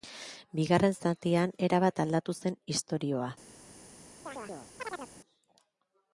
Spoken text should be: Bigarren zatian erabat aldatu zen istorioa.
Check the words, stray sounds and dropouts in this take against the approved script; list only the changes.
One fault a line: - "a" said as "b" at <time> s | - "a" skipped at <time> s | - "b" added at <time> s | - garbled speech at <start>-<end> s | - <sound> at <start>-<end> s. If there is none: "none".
- chirp at 4.3-5.1 s